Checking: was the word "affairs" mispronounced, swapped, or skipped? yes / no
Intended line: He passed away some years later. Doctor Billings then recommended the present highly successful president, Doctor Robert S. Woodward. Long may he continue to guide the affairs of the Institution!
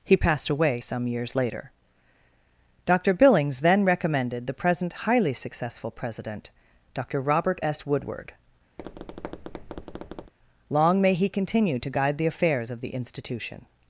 no